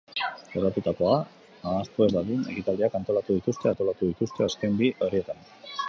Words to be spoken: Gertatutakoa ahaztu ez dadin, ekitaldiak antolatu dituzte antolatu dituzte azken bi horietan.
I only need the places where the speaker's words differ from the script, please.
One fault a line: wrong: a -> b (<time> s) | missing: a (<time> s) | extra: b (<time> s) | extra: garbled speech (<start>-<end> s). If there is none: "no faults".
no faults